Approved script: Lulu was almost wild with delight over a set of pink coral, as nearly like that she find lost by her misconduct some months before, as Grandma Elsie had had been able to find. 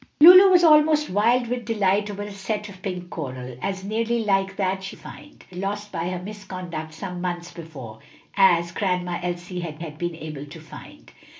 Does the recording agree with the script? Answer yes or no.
yes